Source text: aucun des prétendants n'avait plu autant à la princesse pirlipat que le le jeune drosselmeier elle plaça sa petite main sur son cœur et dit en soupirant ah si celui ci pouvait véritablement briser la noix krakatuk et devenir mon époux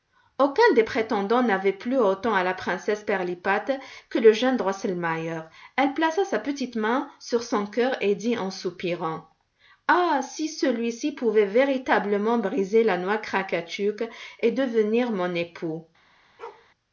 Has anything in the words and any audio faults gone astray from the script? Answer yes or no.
yes